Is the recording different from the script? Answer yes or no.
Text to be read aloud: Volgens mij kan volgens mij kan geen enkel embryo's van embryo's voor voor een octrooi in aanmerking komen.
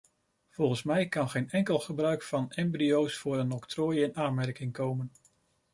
yes